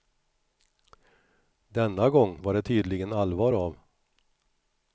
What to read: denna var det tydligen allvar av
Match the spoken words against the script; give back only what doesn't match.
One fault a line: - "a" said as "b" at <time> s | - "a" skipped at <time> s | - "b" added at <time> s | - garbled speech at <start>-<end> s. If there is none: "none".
- "gång" added at 2.1 s